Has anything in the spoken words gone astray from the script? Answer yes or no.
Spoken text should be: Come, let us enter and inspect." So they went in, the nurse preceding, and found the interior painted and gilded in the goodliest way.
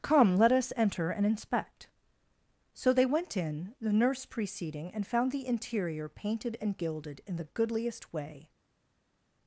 no